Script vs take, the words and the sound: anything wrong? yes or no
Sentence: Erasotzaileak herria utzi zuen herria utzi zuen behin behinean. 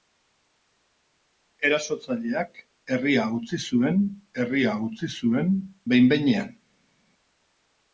no